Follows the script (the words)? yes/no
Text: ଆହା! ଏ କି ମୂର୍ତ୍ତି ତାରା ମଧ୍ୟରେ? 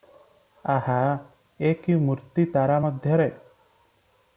yes